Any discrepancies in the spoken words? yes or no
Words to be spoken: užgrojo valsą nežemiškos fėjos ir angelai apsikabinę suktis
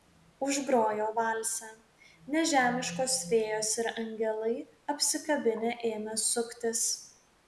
yes